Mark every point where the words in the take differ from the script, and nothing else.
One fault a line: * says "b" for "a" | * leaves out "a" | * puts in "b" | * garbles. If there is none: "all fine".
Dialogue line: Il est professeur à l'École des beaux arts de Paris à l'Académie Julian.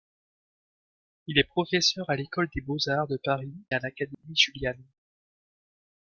all fine